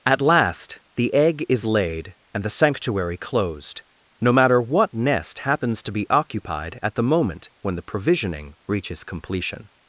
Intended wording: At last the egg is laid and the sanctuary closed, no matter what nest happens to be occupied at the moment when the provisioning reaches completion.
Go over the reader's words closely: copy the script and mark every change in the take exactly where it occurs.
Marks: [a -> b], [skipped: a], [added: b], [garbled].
At last the egg is laid and the sanctuary closed, no matter what nest happens to be occupied at the moment when the provisioning reaches completion.